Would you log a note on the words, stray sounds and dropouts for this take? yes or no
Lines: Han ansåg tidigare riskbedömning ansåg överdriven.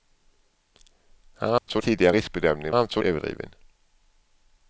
yes